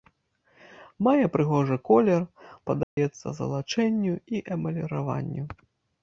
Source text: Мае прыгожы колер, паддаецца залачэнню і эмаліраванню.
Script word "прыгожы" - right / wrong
right